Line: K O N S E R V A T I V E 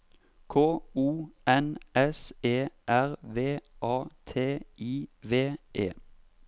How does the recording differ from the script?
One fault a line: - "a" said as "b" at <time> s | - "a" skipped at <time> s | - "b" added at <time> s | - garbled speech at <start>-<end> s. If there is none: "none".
none